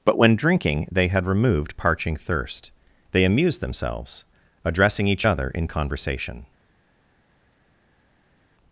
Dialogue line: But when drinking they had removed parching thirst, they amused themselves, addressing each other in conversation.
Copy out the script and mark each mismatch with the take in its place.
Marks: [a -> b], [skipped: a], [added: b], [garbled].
But when drinking they had removed parching thirst, they amused themselves, addressing each other in conversation.